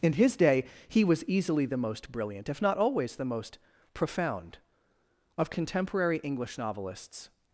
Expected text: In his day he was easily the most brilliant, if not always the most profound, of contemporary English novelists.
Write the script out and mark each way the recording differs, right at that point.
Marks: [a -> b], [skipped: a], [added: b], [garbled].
In his day he was easily the most brilliant, if not always the most profound, of contemporary English novelists.